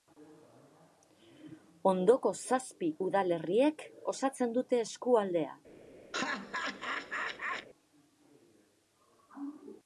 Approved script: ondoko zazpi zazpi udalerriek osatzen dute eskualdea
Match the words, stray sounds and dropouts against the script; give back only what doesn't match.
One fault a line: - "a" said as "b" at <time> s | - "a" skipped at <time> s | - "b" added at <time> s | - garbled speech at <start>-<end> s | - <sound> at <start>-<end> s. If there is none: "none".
- "zazpi" skipped at 2.9 s
- laugh at 6.1-7.7 s